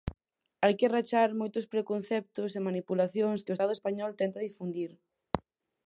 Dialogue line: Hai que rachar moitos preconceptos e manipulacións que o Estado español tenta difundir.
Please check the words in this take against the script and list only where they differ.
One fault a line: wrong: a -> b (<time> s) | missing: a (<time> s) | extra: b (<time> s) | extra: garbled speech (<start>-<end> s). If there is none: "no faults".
no faults